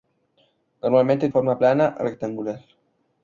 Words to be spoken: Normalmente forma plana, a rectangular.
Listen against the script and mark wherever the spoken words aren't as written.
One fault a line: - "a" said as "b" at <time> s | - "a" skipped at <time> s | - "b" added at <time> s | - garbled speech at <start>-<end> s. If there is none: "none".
none